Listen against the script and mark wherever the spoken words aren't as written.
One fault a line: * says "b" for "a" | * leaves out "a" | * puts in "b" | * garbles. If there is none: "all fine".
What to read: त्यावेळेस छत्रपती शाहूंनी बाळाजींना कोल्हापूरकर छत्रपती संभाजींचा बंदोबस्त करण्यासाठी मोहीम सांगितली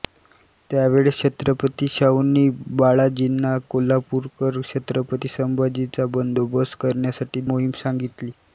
all fine